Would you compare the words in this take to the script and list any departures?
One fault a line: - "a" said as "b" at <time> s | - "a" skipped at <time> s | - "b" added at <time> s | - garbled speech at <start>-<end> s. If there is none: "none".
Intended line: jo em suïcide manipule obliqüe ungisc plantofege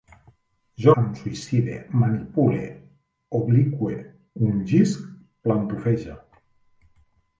none